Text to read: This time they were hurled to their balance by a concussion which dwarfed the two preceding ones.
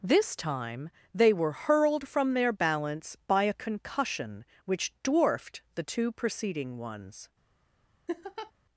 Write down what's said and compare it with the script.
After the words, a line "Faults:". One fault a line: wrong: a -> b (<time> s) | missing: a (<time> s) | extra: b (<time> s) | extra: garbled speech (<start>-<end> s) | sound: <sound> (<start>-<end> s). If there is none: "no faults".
This time they were hurled from their balance by a concussion which dwarfed the two preceding ones.
Faults:
wrong: to -> from (2.1 s)
sound: laugh (8.1-8.5 s)